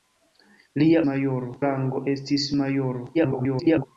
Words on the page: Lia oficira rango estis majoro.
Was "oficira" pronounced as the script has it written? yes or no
no